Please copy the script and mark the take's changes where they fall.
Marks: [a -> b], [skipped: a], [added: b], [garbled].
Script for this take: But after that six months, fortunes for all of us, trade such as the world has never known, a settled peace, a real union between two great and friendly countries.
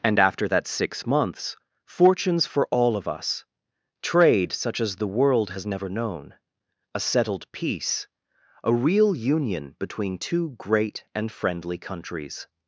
[But -> And] after that six months, fortunes for all of us, trade such as the world has never known, a settled peace, a real union between two great and friendly countries.